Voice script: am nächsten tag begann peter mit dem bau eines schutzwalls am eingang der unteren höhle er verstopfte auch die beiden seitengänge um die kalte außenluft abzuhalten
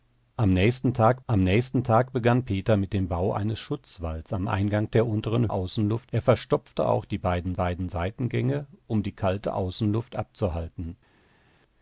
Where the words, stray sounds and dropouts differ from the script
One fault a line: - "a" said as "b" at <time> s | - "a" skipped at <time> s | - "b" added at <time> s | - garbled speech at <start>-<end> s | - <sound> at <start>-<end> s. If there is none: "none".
- "am nächsten tag" added at 1.3 s
- "höhle" said as "außenluft" at 5.5 s
- "beiden" added at 7.5 s